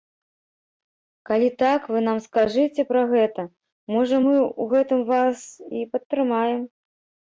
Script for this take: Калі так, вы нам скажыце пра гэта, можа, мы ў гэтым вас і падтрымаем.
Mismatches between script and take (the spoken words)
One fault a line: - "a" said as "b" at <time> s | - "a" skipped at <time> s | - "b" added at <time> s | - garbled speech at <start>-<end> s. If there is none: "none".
none